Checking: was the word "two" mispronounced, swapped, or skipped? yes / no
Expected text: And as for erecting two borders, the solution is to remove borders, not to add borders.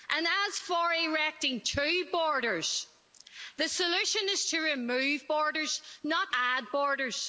no